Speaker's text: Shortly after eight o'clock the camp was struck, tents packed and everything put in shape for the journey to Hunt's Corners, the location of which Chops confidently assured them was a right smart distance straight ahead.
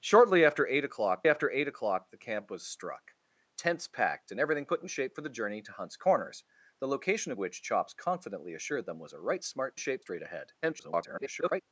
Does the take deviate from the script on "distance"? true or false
true